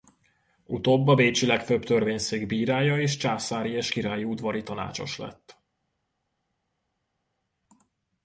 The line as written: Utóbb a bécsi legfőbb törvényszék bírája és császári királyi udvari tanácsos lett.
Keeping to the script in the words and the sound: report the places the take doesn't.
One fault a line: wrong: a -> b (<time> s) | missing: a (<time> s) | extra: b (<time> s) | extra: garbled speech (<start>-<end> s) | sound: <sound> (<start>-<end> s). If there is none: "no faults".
extra: és (3.7 s)